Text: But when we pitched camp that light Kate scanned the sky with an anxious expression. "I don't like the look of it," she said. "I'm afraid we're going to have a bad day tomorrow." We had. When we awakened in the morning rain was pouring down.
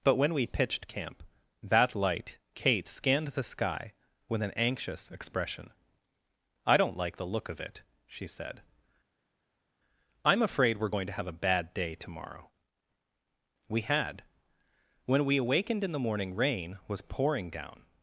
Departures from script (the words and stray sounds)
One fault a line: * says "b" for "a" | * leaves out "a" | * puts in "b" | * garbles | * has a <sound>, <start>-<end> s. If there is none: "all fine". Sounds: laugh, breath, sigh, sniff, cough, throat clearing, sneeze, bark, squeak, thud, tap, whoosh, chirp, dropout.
all fine